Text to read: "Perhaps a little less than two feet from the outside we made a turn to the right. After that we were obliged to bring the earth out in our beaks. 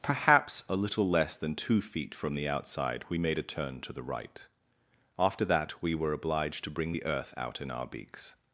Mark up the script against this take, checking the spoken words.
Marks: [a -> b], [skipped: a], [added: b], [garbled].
"Perhaps a little less than two feet from the outside we made a turn to the right. After that we were obliged to bring the earth out in our beaks.